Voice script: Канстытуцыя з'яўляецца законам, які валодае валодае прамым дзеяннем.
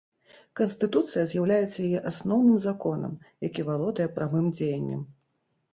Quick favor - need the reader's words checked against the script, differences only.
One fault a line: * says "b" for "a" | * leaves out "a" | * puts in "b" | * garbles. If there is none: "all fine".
* puts in "яе асноўным"
* leaves out "валодае"